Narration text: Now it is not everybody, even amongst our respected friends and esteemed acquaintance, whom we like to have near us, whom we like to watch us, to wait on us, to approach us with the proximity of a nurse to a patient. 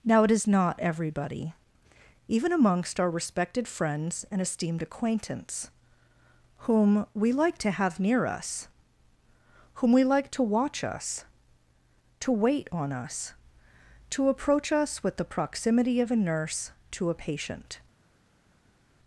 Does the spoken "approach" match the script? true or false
true